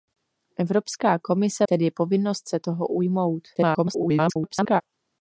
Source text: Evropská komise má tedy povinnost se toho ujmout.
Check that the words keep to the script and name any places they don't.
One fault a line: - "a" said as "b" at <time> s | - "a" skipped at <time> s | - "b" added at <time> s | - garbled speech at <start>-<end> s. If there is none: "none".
- "má" skipped at 1.7 s
- garbled speech at 3.5-4.8 s